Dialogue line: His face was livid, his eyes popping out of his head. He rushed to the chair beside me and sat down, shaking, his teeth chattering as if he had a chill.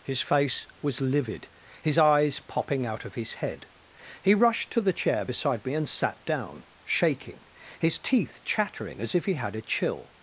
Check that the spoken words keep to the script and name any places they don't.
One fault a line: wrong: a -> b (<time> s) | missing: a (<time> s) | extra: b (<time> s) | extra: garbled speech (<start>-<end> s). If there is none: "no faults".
no faults